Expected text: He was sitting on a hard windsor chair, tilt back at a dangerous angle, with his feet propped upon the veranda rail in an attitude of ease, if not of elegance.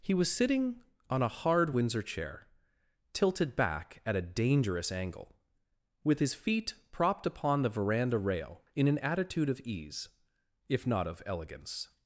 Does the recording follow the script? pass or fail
fail